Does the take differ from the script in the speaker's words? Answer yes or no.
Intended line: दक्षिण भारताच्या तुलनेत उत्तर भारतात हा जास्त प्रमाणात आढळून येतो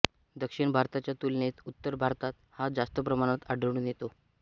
no